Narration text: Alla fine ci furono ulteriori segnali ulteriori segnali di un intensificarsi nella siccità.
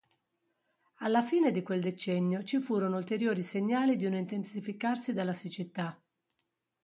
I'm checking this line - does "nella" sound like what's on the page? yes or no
no